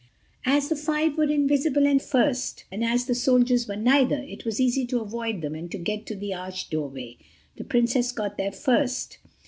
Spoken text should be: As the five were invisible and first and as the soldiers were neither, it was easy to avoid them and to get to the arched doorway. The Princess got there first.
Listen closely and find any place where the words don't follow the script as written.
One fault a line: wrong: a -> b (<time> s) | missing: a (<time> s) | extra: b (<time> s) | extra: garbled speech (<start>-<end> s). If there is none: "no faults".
no faults